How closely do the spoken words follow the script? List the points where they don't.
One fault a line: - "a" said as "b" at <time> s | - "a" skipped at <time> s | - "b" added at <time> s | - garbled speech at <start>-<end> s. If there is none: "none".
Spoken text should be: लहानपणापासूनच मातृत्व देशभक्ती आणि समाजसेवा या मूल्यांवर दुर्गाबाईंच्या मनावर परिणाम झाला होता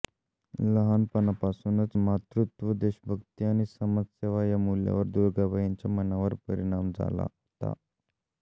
none